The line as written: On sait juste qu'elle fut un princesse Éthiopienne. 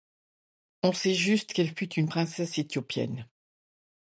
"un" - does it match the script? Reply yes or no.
no